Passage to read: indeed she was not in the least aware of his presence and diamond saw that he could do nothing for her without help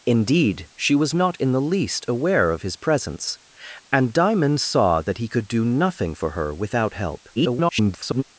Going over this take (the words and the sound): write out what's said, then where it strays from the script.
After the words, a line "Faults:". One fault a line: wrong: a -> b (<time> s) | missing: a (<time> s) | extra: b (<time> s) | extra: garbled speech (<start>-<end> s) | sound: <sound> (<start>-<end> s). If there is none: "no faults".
indeed she was not in the least aware of his presence and diamond saw that he could do nothing for her without help [garbled]
Faults:
extra: garbled speech (7.4-8.2 s)